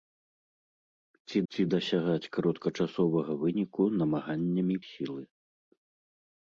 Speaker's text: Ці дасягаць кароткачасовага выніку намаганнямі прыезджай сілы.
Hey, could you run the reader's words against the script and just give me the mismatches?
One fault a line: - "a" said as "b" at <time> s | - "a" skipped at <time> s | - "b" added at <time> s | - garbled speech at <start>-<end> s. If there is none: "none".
- "ці" added at 1.5 s
- "прыезджай" skipped at 4.8 s